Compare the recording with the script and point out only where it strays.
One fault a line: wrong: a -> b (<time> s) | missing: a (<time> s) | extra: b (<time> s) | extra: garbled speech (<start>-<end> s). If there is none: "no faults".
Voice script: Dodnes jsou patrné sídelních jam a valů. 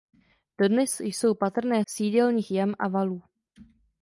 no faults